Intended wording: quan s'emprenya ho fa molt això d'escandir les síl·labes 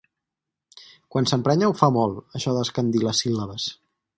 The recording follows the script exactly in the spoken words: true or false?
true